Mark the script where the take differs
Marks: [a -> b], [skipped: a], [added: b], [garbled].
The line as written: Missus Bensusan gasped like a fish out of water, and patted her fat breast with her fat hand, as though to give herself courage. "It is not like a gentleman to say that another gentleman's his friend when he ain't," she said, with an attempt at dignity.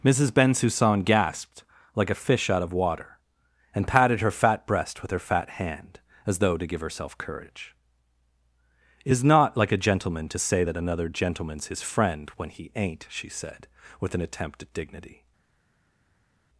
Missus Bensusan gasped like a fish out of water, and patted her fat breast with her fat hand, as though to give herself courage. "It is not like a gentleman to say that another gentleman's his friend when he ain't," she said, with an attempt at dignity.